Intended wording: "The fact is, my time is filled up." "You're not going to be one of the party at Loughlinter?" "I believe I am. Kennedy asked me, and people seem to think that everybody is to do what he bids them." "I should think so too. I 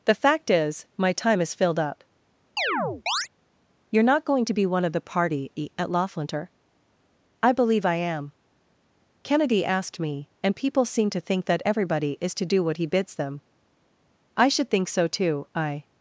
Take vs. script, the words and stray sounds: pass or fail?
fail